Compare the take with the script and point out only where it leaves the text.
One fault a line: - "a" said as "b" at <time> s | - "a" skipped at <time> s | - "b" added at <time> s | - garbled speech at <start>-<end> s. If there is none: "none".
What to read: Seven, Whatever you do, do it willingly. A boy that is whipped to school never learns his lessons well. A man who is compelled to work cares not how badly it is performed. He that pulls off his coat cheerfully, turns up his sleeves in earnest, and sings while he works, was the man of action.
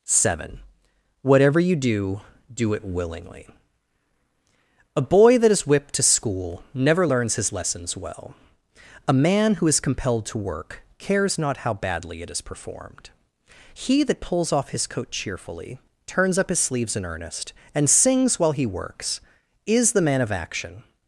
- "was" said as "is" at 19.6 s